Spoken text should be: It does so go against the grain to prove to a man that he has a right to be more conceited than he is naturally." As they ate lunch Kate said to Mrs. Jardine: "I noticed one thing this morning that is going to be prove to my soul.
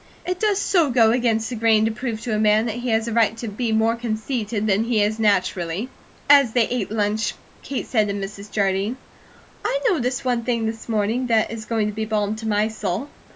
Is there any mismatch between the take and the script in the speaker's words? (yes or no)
yes